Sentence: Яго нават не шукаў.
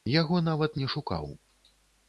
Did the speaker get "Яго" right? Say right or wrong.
right